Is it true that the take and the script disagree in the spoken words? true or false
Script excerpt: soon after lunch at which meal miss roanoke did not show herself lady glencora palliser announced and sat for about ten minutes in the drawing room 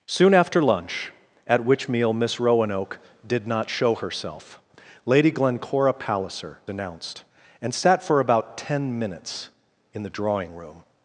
false